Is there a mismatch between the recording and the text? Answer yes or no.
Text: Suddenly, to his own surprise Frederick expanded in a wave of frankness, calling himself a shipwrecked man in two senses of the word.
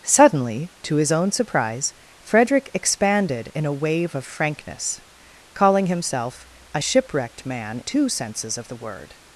yes